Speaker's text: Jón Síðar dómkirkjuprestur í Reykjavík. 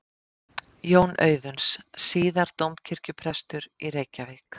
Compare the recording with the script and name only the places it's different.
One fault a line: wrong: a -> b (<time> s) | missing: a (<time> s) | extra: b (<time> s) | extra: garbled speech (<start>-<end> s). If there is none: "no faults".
extra: Auðuns (1.2 s)